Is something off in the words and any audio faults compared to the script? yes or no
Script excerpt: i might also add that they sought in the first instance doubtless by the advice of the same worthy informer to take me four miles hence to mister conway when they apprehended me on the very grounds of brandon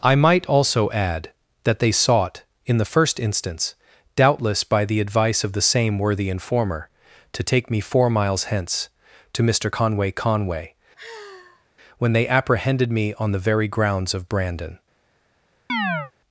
yes